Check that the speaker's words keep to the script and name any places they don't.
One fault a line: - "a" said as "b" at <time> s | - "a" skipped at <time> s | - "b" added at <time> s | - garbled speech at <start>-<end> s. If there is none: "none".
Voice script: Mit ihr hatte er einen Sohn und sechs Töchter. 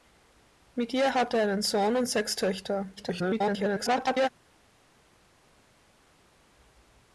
- garbled speech at 3.0-4.3 s